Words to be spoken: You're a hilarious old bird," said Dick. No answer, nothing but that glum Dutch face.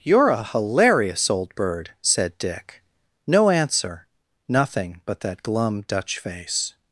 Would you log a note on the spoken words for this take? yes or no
no